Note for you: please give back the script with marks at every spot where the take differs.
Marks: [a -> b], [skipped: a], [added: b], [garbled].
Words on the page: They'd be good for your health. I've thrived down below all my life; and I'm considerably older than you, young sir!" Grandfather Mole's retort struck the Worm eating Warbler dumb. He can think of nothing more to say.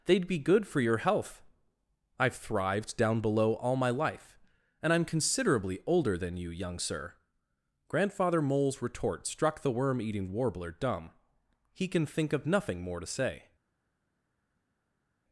They'd be good for your health. I've thrived down below all my life; and I'm considerably older than you, young sir!" Grandfather Mole's retort struck the Worm eating Warbler dumb. He can think of nothing more to say.